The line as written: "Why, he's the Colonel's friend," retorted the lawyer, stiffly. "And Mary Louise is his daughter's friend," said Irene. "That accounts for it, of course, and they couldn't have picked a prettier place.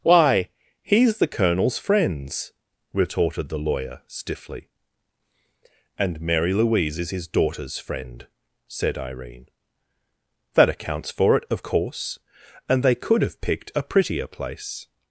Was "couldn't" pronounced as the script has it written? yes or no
no